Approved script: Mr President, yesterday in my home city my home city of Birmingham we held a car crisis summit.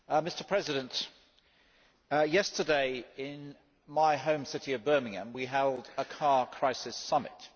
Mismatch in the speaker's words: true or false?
true